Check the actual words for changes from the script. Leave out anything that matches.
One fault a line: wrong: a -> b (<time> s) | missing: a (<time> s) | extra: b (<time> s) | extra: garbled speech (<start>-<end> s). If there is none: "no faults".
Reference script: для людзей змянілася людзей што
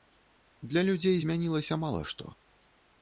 wrong: людзей -> мала (1.9 s)